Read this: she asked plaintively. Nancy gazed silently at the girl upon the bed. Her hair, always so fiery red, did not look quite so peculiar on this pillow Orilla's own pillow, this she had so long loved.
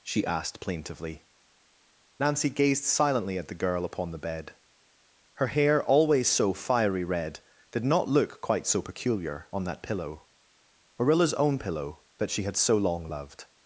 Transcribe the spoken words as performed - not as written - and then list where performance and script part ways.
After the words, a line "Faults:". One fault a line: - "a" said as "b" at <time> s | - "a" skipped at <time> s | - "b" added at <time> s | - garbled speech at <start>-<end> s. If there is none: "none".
she asked plaintively. Nancy gazed silently at the girl upon the bed. Her hair, always so fiery red, did not look quite so peculiar on that pillow Orilla's own pillow, that she had so long loved.
Faults:
- "this" said as "that" at 9.7 s
- "this" said as "that" at 12.2 s